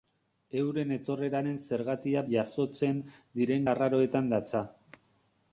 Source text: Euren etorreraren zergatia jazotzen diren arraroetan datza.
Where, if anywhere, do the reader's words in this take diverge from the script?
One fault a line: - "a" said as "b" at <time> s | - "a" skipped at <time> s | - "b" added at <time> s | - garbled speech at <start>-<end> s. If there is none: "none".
none